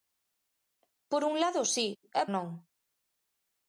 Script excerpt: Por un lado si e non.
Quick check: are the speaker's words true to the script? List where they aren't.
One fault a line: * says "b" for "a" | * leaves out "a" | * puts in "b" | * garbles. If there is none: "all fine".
all fine